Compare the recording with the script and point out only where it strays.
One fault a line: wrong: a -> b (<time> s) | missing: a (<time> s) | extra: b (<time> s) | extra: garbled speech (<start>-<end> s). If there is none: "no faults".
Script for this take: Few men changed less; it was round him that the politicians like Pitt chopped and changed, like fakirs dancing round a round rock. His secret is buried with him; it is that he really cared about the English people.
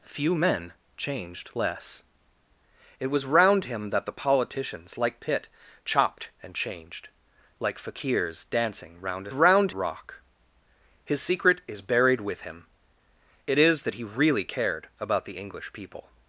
no faults